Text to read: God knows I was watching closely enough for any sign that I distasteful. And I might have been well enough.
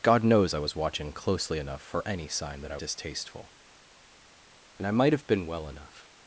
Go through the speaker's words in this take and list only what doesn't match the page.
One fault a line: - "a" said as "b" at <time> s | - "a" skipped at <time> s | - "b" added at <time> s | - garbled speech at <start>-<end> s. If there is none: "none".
none